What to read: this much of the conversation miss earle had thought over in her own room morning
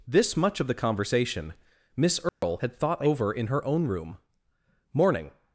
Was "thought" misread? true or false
false